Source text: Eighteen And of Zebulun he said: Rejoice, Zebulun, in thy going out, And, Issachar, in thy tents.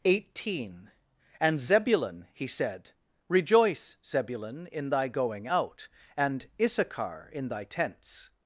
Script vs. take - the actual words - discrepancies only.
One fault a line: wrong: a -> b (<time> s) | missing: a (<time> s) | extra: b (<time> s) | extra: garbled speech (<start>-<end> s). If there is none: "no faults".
missing: of (1.6 s)